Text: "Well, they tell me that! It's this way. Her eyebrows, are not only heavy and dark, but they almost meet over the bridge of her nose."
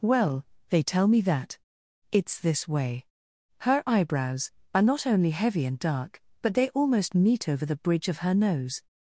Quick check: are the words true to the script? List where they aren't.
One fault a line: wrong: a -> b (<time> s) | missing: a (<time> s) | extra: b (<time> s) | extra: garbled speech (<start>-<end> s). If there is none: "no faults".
no faults